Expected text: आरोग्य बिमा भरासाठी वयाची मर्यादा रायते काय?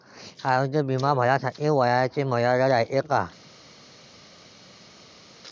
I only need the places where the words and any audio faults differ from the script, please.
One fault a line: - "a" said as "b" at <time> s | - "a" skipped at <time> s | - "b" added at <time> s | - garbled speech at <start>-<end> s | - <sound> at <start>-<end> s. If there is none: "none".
none